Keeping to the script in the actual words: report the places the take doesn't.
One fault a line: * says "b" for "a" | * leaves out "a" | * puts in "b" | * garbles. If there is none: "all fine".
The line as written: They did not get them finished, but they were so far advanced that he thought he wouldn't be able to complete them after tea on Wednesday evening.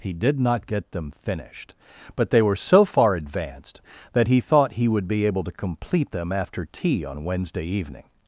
* says "He" for "They"
* says "would" for "wouldn't"